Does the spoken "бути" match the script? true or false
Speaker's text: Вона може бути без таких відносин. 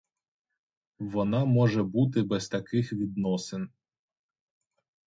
true